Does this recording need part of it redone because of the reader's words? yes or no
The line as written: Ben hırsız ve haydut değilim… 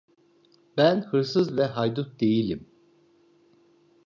no